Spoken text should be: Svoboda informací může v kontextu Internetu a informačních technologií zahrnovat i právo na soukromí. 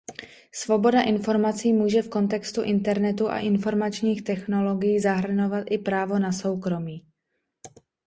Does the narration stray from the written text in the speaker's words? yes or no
no